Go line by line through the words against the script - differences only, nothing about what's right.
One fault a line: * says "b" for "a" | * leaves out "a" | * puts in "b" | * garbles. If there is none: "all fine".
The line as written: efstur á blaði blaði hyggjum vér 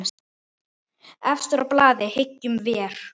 * leaves out "blaði"